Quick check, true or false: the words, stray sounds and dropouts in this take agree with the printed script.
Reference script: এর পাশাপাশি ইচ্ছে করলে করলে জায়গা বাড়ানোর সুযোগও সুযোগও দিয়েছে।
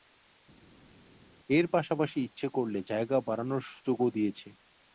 false